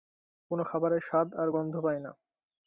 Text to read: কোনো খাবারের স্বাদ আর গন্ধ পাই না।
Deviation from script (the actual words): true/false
false